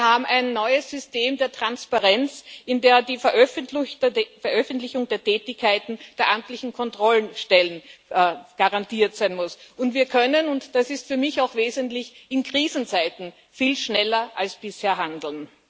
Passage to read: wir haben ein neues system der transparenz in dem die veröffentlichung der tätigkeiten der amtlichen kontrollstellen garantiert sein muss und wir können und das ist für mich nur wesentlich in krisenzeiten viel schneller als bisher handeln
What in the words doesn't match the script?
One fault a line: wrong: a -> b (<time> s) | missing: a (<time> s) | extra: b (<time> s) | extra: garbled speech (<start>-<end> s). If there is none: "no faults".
wrong: nur -> auch (11.4 s)